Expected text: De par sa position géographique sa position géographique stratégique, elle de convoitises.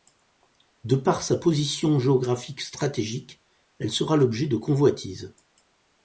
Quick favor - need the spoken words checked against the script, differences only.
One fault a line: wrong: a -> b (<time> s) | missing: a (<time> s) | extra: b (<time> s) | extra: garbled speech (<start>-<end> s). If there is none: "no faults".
wrong: sa position géographique stratégique elle -> stratégique elle sera l'objet (2.6 s)